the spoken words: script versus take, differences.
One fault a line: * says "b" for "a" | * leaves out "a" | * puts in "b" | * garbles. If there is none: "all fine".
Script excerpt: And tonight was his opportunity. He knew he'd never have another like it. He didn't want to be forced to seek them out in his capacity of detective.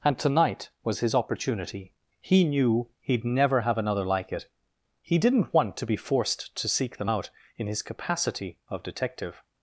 all fine